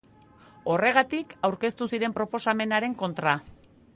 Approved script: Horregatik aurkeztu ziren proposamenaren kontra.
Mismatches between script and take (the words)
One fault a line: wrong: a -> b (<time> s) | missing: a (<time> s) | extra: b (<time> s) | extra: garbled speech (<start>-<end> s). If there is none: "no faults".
no faults